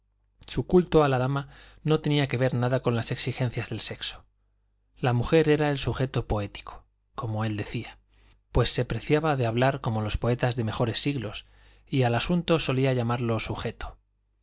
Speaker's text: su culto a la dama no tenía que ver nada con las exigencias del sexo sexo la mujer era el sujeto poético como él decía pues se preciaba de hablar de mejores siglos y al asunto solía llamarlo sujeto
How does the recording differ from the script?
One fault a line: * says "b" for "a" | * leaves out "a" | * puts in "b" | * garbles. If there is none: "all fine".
* leaves out "sexo"
* puts in "como los poetas"